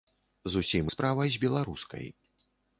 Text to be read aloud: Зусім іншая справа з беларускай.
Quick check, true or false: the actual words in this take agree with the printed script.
false